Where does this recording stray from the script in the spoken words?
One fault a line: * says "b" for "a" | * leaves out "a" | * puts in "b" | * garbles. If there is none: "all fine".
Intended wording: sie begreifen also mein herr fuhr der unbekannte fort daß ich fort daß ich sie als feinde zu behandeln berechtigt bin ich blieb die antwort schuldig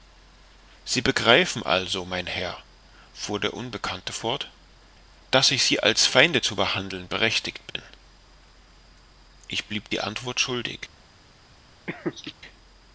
* leaves out "fort daß ich"